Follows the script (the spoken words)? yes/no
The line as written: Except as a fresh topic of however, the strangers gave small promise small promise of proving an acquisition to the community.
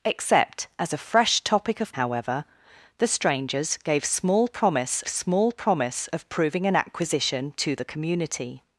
yes